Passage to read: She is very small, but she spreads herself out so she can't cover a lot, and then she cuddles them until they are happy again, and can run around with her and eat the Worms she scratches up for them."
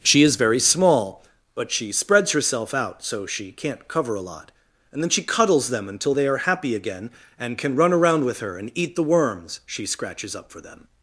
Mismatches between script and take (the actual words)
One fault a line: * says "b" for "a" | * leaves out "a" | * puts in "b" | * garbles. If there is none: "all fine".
all fine